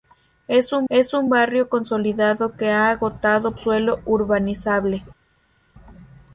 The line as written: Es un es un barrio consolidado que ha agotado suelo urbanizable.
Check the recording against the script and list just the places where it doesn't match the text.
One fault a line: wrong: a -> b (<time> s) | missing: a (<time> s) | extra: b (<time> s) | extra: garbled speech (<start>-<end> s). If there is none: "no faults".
no faults